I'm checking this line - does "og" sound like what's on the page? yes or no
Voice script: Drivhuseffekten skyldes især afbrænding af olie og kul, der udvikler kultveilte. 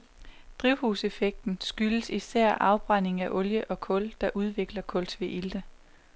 yes